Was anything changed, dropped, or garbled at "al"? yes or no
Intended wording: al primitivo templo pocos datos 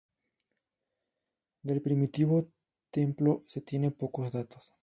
yes